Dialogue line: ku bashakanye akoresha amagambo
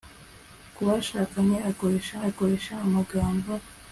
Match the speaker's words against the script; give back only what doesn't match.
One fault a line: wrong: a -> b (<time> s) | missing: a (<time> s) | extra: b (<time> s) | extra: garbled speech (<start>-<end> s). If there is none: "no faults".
extra: akoresha (2.3 s)